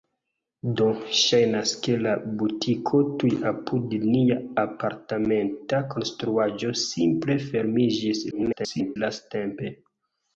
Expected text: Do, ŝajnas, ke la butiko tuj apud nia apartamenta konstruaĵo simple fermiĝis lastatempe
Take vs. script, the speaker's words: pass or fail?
fail